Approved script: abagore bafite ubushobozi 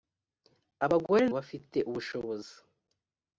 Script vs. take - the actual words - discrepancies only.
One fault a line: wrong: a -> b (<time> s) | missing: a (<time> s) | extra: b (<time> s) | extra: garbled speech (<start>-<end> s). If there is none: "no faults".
no faults